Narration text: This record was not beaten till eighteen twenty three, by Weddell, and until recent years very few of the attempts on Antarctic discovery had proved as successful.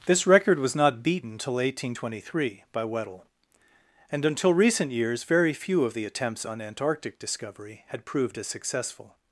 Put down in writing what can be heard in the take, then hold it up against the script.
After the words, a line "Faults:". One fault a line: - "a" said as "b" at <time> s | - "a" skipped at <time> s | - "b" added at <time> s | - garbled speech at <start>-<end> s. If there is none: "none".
This record was not beaten till eighteen twenty three, by Weddell, and until recent years very few of the attempts on Antarctic discovery had proved as successful.
Faults:
none